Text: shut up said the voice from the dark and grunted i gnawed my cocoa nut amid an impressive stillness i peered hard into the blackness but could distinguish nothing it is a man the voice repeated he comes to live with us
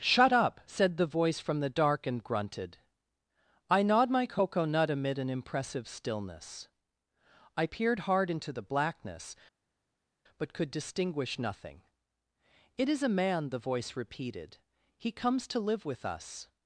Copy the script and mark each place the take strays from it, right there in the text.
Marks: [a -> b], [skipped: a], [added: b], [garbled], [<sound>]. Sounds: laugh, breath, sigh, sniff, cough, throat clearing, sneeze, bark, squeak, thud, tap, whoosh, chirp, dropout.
shut up said the voice from the dark and grunted i gnawed my cocoa nut amid an impressive stillness i peered hard into the blackness but could distinguish nothing it is a man the voice repeated he comes to live with us